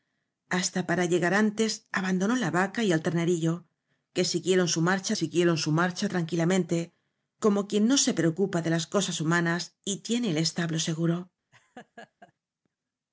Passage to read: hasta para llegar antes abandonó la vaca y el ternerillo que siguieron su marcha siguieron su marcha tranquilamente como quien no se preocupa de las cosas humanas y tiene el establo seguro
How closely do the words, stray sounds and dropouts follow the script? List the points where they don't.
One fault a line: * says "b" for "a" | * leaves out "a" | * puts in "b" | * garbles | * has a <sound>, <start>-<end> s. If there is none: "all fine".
* has a laugh, 11.5-12.3 s